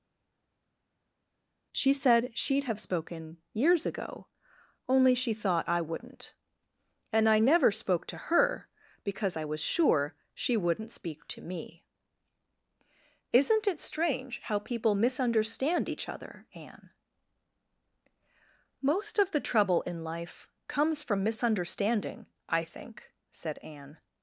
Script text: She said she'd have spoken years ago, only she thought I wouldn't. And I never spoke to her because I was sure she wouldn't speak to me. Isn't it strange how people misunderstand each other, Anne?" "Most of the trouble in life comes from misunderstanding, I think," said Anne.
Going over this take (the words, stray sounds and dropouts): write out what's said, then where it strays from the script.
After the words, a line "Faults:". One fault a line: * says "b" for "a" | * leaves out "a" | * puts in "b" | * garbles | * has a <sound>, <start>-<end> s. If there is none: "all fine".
She said she'd have spoken years ago, only she thought I wouldn't. And I never spoke to her because I was sure she wouldn't speak to me. Isn't it strange how people misunderstand each other, Anne?" "Most of the trouble in life comes from misunderstanding, I think," said Anne.
Faults:
all fine